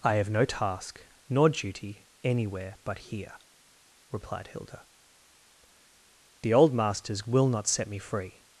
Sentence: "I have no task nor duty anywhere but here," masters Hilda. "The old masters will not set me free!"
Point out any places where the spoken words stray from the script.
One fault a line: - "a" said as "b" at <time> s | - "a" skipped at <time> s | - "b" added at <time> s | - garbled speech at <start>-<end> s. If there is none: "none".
- "masters" said as "replied" at 4.1 s